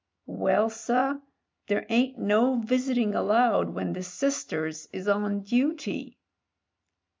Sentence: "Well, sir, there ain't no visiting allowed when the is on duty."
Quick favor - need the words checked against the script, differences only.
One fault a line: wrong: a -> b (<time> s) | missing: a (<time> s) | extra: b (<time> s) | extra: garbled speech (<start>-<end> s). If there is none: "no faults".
extra: sisters (4.0 s)